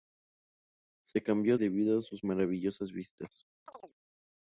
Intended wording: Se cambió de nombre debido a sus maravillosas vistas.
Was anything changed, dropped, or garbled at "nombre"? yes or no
yes